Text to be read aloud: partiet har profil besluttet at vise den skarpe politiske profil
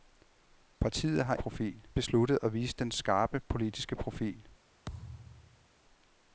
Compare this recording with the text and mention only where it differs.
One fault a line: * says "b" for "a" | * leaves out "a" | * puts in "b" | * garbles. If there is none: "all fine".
all fine